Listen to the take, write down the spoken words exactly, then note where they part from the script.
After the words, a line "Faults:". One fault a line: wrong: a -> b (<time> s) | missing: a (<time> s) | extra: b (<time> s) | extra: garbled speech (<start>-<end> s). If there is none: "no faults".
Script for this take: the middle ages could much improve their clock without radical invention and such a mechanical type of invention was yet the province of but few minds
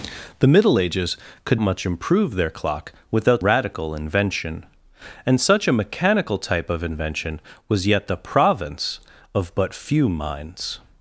the middle ages could much improve their clock without radical invention and such a mechanical type of invention was yet the province of but few minds
Faults:
no faults